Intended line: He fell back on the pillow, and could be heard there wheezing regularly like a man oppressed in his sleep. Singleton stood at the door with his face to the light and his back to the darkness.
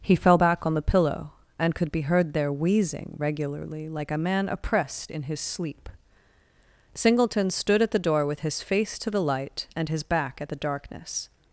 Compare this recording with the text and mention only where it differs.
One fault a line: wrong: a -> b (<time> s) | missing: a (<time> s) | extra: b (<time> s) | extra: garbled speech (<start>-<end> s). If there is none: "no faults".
wrong: to -> at (10.4 s)